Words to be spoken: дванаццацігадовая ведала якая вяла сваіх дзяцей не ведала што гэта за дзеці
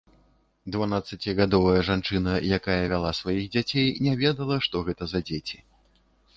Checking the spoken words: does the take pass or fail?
fail